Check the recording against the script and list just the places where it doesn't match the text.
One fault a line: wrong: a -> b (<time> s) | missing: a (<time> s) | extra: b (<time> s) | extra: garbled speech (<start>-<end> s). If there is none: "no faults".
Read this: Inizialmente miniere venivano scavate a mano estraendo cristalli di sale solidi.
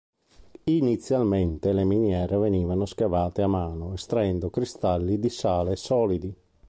extra: le (1.7 s)